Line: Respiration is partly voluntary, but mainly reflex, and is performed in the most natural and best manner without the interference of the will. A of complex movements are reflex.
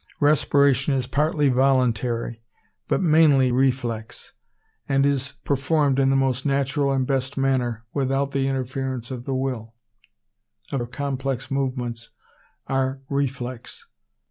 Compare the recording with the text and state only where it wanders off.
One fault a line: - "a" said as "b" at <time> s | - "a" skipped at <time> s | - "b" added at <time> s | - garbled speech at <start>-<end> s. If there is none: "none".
none